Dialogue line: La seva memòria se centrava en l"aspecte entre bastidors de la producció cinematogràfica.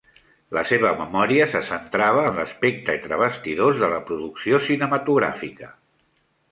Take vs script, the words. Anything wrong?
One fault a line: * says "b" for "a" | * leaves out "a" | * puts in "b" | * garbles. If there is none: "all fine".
all fine